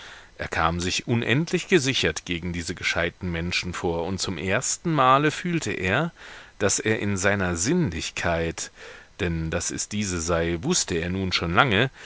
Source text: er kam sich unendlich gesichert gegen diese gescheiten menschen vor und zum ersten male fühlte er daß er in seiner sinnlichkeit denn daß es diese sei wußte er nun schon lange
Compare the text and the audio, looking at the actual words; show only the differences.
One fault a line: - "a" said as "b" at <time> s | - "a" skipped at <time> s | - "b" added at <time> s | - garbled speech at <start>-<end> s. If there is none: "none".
none